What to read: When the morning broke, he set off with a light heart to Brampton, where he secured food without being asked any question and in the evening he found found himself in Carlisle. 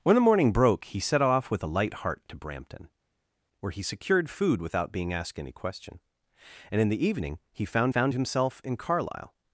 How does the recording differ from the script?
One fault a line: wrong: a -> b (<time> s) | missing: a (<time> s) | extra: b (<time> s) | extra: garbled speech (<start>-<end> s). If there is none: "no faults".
no faults